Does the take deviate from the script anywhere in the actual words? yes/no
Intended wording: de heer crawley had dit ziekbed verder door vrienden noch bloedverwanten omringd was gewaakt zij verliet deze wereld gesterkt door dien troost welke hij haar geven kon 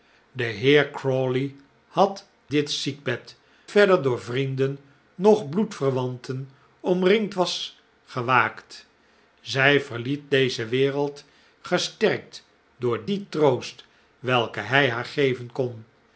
no